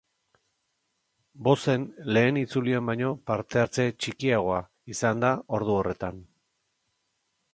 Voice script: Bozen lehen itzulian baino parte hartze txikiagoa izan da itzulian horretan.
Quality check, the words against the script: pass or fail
fail